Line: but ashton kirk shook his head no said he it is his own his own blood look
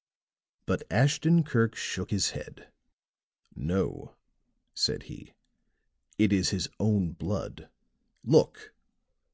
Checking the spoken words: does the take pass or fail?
fail